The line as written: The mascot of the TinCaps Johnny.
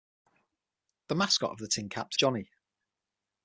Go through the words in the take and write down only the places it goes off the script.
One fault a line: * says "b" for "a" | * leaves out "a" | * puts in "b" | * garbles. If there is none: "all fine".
all fine